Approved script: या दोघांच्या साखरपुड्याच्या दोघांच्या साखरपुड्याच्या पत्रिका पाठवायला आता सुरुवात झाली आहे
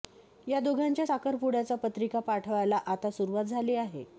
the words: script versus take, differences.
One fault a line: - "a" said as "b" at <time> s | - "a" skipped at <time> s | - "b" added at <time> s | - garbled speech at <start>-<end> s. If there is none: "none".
- "दोघांच्या साखरपुड्याच्या" skipped at 1.8 s